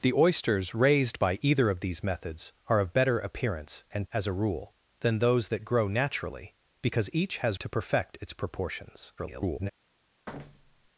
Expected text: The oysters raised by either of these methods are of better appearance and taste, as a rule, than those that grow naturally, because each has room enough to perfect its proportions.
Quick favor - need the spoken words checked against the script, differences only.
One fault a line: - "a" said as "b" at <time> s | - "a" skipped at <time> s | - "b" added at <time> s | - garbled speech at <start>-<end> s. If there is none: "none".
- "taste" skipped at 4.1 s
- "room enough" skipped at 7.6 s
- garbled speech at 9.2-9.7 s